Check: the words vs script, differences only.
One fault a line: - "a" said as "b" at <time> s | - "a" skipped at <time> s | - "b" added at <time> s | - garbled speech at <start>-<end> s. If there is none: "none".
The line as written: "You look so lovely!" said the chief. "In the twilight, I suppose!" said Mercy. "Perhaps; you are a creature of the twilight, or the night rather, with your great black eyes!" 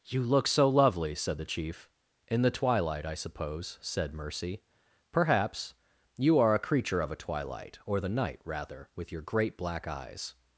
- "the" said as "a" at 7.1 s